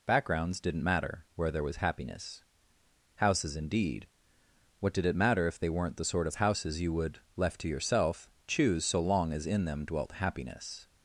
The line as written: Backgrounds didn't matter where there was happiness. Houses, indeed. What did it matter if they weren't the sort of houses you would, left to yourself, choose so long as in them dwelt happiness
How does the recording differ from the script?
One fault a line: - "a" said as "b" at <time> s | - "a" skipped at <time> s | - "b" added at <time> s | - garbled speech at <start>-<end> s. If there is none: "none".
none